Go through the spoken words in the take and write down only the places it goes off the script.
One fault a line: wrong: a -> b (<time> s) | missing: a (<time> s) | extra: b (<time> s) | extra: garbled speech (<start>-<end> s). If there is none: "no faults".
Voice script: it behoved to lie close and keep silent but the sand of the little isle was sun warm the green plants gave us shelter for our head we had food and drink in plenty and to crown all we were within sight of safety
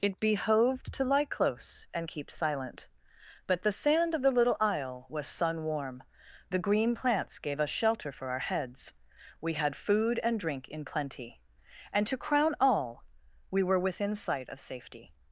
wrong: head -> heads (8.5 s)